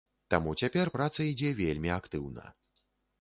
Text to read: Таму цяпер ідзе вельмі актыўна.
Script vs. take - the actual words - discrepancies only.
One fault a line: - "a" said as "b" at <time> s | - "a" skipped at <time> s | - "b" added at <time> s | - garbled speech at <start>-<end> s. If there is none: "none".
- "праца" added at 0.9 s